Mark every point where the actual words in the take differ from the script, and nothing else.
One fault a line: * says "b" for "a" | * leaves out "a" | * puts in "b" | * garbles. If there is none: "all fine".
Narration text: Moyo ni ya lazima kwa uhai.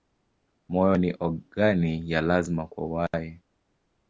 * puts in "ogani"